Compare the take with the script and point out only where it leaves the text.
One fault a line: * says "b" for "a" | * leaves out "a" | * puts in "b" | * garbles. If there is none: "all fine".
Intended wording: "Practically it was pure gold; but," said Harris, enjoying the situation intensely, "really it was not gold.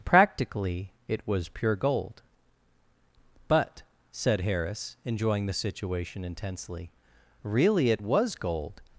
* leaves out "not"